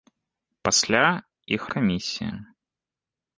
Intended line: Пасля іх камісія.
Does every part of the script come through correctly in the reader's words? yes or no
yes